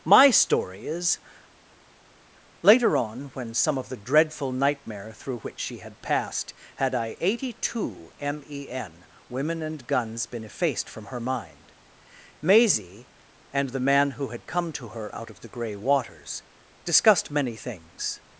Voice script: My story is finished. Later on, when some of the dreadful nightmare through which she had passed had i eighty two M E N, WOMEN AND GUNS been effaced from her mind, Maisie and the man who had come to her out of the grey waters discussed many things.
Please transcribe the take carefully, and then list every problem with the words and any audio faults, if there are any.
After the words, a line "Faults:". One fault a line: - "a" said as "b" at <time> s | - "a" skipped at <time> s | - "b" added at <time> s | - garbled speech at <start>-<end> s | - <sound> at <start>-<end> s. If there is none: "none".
My story is. Later on, when some of the dreadful nightmare through which she had passed had i eighty two M E N, WOMEN AND GUNS been effaced from her mind, Maisie and the man who had come to her out of the grey waters discussed many things.
Faults:
- "finished" skipped at 1.2 s